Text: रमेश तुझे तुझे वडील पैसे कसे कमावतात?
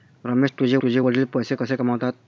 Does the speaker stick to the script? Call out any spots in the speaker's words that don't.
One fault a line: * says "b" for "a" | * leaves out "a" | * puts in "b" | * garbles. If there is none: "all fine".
all fine